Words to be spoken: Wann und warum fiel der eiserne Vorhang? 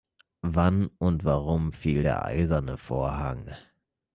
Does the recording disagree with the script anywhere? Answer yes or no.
no